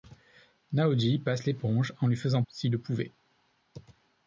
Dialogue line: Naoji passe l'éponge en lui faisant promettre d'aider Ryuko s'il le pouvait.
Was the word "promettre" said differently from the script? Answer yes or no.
yes